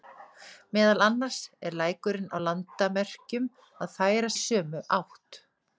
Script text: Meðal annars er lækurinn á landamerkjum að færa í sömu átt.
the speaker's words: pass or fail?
pass